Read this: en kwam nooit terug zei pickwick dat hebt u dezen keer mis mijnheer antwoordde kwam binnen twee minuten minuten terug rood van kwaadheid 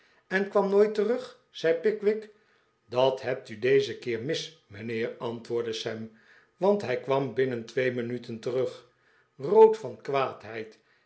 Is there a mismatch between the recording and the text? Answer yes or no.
yes